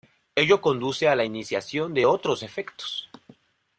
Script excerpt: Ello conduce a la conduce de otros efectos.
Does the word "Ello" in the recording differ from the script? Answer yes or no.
no